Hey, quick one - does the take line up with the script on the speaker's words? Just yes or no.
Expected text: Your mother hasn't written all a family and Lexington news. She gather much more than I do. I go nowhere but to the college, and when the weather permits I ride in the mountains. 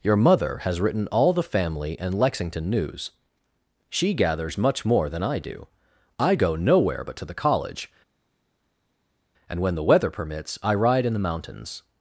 no